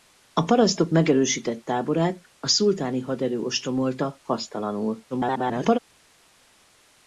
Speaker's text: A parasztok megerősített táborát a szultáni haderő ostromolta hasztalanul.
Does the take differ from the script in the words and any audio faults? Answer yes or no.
yes